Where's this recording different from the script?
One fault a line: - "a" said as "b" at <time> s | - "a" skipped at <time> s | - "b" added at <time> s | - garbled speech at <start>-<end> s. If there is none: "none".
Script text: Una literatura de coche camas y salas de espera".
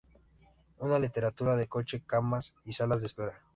none